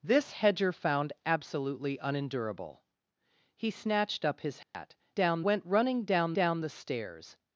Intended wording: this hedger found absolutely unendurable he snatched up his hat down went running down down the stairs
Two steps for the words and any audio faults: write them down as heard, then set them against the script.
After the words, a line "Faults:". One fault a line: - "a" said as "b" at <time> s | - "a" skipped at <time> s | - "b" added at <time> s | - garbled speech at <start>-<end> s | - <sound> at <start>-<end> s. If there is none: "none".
this hedger found absolutely unendurable he snatched up his hat down went running down down the stairs
Faults:
- dropout at 4.6-4.7 s